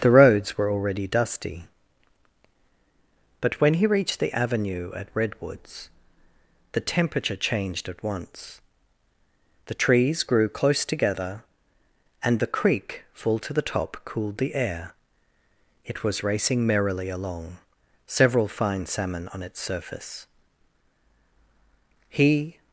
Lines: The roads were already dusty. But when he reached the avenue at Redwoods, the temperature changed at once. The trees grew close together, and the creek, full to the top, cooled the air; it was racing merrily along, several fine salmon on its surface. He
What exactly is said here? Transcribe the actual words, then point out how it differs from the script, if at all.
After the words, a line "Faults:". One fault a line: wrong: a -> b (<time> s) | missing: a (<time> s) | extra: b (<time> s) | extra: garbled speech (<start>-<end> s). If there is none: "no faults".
The roads were already dusty. But when he reached the avenue at Redwoods, the temperature changed at once. The trees grew close together, and the creek, full to the top, cooled the air; it was racing merrily along, several fine salmon on its surface. He
Faults:
no faults